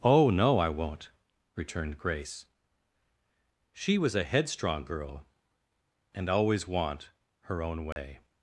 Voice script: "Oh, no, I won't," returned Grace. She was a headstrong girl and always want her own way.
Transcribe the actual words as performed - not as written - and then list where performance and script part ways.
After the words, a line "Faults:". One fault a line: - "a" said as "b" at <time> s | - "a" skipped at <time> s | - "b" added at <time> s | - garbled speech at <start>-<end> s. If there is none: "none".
"Oh, no, I won't," returned Grace. She was a headstrong girl and always want her own way.
Faults:
none